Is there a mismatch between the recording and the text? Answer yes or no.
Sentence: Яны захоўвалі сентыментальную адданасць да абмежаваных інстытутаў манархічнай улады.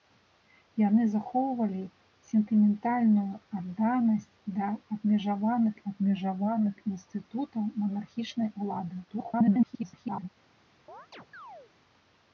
yes